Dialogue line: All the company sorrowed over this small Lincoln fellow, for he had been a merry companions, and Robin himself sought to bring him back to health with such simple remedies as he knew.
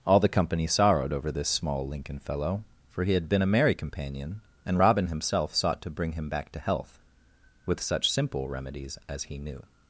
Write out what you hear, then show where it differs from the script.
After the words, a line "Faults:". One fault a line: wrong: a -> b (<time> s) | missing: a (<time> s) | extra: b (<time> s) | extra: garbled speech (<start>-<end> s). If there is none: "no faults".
All the company sorrowed over this small Lincoln fellow, for he had been a merry companion, and Robin himself sought to bring him back to health with such simple remedies as he knew.
Faults:
wrong: companions -> companion (3.8 s)